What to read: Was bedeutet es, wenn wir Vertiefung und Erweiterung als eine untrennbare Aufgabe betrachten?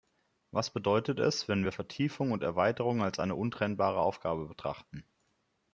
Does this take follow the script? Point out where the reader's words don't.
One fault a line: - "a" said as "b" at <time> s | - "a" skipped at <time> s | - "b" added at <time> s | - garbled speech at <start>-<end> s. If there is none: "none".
none